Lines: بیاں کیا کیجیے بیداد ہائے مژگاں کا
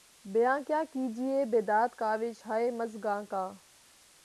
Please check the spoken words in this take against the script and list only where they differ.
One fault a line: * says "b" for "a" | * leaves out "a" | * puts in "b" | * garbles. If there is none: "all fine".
* puts in "کاوش"